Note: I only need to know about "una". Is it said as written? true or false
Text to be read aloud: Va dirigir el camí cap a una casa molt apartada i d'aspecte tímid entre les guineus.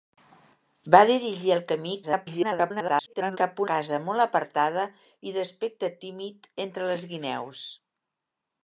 false